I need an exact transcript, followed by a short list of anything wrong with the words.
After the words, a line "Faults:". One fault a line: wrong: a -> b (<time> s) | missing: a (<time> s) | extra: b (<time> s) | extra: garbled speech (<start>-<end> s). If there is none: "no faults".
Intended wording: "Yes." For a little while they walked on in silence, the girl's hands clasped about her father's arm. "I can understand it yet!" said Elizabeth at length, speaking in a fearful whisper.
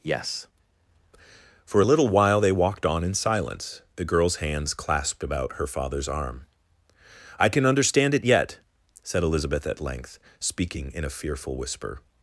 "Yes." For a little while they walked on in silence, the girl's hands clasped about her father's arm. "I can understand it yet!" said Elizabeth at length, speaking in a fearful whisper.
Faults:
no faults